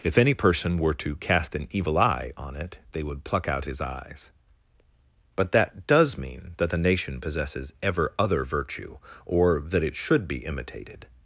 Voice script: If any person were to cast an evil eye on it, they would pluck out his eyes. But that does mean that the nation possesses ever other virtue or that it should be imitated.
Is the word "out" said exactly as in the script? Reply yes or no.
yes